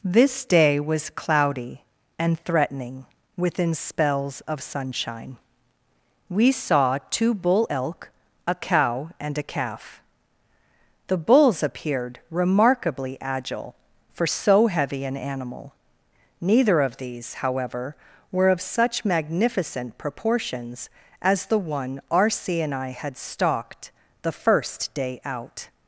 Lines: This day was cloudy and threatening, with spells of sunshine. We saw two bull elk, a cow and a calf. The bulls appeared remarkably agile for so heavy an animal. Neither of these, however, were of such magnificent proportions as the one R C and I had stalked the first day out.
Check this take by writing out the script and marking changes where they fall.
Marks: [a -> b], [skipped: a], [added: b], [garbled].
This day was cloudy and threatening, [with -> within] spells of sunshine. We saw two bull elk, a cow and a calf. The bulls appeared remarkably agile for so heavy an animal. Neither of these, however, were of such magnificent proportions as the one R C and I had stalked the first day out.